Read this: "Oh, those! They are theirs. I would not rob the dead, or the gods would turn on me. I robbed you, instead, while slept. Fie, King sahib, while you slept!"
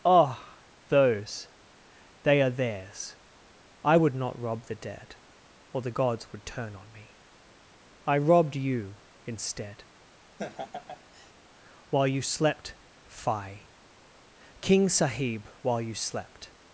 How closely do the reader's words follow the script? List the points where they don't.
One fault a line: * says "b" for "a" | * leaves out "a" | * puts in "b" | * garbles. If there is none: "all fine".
* puts in "you"